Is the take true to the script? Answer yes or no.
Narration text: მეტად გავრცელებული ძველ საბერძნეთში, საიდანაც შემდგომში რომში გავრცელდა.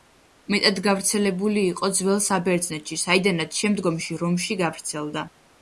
no